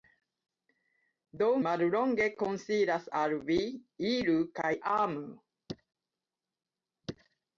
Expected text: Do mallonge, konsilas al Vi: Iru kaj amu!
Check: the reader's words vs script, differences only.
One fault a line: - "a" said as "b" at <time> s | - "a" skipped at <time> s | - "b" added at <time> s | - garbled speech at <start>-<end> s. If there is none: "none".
none